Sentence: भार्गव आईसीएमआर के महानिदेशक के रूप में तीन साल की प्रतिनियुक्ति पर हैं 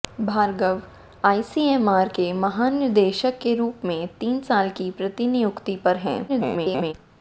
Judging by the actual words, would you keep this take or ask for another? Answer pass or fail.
fail